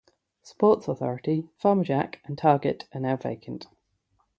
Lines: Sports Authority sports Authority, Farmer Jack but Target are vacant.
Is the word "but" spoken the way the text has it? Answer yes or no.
no